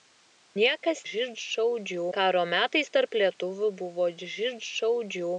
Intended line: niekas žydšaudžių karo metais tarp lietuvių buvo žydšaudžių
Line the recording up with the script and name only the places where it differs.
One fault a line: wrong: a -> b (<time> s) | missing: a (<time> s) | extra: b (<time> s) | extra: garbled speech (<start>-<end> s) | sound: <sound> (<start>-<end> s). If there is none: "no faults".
no faults